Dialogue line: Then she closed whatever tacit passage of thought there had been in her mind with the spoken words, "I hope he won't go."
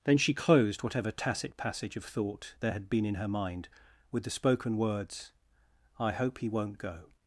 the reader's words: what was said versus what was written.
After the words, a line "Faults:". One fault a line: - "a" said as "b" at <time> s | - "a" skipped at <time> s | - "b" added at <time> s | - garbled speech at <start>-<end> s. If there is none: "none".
Then she closed whatever tacit passage of thought there had been in her mind with the spoken words, "I hope he won't go."
Faults:
none